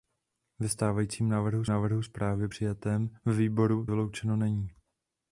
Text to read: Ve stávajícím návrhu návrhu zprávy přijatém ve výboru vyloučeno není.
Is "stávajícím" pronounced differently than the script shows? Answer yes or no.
no